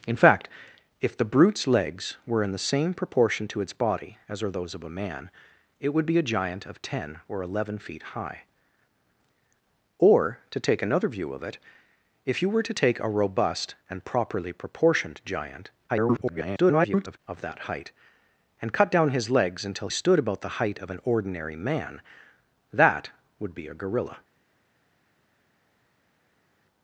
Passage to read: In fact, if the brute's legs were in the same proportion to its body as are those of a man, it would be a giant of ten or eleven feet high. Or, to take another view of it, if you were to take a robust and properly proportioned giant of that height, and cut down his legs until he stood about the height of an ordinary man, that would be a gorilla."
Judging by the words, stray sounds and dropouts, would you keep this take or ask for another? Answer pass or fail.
fail